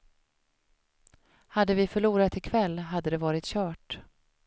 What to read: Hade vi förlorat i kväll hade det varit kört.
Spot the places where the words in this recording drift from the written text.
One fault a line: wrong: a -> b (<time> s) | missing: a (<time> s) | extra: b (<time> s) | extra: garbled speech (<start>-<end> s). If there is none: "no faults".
no faults